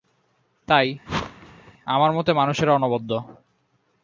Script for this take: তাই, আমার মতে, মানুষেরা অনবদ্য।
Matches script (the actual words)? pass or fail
pass